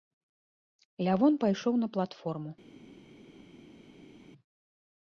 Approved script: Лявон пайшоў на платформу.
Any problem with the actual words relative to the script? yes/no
no